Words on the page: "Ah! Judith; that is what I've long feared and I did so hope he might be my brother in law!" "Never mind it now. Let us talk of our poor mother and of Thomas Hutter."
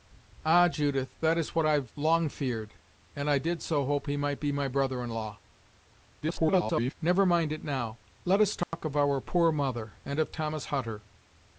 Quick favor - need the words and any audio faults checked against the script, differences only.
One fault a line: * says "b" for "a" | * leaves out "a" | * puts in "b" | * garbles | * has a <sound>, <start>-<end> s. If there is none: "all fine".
* garbles
* has a dropout, 8.6-8.7 s